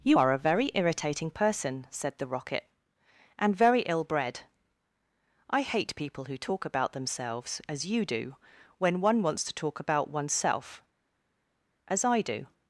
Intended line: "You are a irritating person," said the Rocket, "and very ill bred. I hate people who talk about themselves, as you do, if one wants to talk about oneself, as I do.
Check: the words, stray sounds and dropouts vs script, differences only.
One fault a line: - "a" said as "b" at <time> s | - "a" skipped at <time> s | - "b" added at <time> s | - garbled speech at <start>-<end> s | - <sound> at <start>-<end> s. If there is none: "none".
- "very" added at 0.4 s
- "if" said as "when" at 8.8 s